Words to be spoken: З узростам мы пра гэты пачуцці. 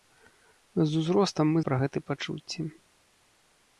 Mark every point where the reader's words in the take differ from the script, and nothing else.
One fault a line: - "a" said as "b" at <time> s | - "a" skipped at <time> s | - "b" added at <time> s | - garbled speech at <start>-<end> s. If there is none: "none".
none